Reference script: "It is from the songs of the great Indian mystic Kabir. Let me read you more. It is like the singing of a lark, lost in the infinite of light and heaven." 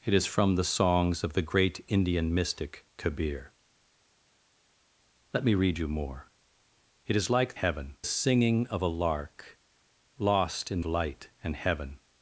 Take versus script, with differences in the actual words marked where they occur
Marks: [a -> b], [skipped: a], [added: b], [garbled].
"It is from the songs of the great Indian mystic Kabir. Let me read you more. It is like [the -> heaven] singing of a lark, lost in [skipped: the infinite of] light and heaven."